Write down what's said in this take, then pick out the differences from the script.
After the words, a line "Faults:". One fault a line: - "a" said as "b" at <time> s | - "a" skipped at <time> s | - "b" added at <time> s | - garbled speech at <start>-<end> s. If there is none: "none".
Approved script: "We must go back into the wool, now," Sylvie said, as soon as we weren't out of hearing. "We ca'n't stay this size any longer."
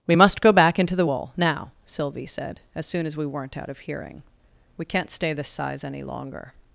"We must go back into the wool, now," Sylvie said, as soon as we weren't out of hearing. "We ca'n't stay this size any longer."
Faults:
none